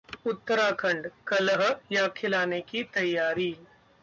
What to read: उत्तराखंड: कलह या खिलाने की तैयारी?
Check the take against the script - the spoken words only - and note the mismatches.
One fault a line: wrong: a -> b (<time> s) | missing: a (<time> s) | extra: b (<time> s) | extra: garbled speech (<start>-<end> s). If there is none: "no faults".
no faults